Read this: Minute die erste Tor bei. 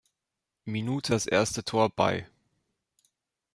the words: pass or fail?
fail